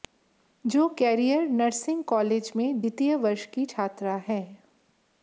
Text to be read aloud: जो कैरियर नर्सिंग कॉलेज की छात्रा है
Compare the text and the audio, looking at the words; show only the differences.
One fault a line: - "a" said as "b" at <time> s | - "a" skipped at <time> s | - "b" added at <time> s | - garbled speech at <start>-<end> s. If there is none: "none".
- "में द्वितीय वर्ष" added at 2.6 s